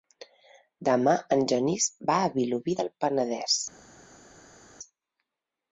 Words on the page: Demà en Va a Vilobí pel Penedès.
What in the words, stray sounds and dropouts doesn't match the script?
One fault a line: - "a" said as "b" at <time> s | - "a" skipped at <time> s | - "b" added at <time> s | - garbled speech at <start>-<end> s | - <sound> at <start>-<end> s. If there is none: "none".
- "Genís" added at 1.5 s
- "pel" said as "del" at 2.8 s